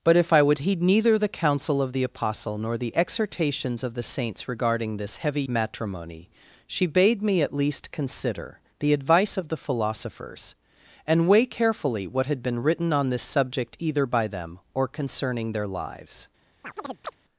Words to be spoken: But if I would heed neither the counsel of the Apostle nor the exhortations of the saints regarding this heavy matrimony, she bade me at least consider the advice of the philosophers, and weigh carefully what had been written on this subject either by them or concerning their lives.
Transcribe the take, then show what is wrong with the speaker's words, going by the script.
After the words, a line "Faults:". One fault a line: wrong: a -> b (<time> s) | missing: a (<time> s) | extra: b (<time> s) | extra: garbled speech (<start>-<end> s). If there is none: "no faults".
But if I would heed neither the counsel of the Apostle nor the exhortations of the saints regarding this heavy matrimony, she bade me at least consider the advice of the philosophers, and weigh carefully what had been written on this subject either by them or concerning their lives.
Faults:
no faults